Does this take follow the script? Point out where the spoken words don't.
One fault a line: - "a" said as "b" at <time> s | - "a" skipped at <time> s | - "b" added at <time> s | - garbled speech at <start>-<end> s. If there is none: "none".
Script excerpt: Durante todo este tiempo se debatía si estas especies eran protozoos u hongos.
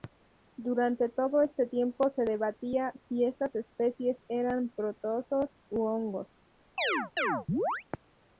none